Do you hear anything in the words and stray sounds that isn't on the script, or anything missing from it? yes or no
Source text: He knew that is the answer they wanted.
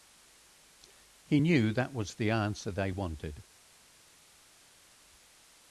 yes